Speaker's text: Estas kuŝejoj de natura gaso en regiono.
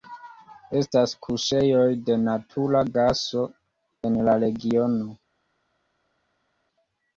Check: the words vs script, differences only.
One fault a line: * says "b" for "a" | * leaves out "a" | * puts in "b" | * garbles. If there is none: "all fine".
* puts in "la"